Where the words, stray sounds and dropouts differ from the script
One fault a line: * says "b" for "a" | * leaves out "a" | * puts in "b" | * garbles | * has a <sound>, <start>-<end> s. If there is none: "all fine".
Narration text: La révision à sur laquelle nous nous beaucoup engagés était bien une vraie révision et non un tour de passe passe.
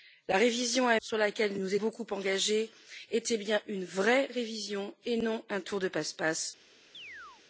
* has a chirp, 6.9-7.4 s